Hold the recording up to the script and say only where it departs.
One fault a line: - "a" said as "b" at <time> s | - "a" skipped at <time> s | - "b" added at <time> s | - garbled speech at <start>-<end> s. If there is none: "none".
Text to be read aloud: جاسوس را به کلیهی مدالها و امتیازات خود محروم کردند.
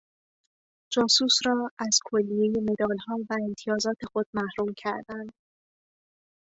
- "به" said as "از" at 1.8 s